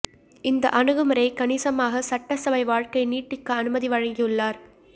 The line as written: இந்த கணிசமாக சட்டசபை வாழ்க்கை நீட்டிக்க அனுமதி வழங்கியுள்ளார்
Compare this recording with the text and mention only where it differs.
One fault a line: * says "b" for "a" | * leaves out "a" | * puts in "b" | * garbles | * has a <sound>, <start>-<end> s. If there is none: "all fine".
* puts in "அணுகுமுறை"